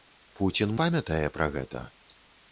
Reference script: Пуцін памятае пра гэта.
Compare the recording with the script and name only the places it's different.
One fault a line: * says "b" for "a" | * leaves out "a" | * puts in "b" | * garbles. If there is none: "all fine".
all fine